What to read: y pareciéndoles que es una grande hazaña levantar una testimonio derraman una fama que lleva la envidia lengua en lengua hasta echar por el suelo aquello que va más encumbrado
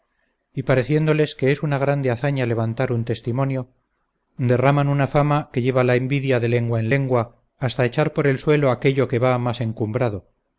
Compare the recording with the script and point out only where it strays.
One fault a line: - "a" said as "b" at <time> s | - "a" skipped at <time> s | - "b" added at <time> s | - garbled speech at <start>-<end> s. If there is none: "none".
- "una" said as "un" at 2.9 s
- "de" added at 6.4 s